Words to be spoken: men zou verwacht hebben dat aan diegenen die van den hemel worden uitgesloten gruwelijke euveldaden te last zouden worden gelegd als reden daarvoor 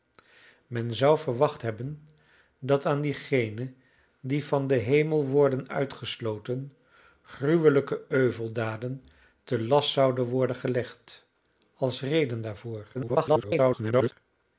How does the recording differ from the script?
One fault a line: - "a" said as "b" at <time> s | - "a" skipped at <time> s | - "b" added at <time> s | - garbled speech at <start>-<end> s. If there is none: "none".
- garbled speech at 12.9-14.1 s